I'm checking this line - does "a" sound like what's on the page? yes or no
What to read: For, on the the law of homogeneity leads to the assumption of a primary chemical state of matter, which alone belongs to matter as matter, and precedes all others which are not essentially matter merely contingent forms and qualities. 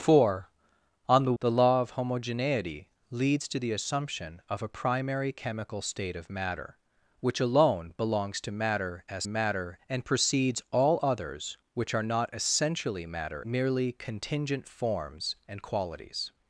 yes